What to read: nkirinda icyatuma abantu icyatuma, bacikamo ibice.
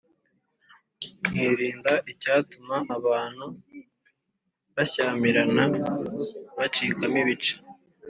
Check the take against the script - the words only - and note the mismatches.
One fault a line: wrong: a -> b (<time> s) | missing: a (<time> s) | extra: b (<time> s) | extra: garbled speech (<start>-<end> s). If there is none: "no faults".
wrong: icyatuma -> bashyamirana (4.7 s)